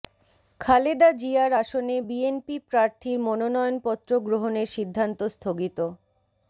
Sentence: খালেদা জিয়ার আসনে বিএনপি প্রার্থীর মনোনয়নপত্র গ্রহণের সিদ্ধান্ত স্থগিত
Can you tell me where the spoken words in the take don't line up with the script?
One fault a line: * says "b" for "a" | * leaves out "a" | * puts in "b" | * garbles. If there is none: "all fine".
all fine